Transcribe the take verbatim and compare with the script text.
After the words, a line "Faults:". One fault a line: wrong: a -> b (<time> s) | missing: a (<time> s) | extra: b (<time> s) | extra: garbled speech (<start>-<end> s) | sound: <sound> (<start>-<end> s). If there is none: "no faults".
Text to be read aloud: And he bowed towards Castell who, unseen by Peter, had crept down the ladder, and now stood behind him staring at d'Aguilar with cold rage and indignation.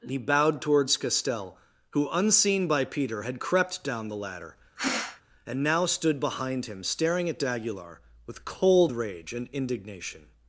he bowed towards Castell who, unseen by Peter, had crept down the ladder, and now stood behind him staring at d'Aguilar with cold rage and indignation.
Faults:
missing: And (0.1 s)
sound: sneeze (4.8-5.2 s)